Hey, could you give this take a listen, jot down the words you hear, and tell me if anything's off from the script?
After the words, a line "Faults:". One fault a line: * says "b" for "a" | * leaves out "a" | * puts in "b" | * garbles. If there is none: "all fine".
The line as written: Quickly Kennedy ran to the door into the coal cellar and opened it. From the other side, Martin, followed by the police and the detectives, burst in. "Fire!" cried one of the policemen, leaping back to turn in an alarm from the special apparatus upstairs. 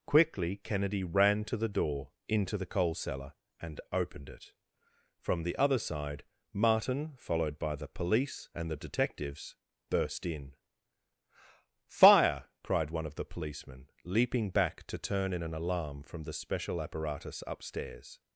Quickly Kennedy ran to the door into the coal cellar and opened it. From the other side, Martin, followed by the police and the detectives, burst in. "Fire!" cried one of the policemen, leaping back to turn in an alarm from the special apparatus upstairs.
Faults:
all fine